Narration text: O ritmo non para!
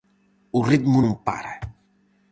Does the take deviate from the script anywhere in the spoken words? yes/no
no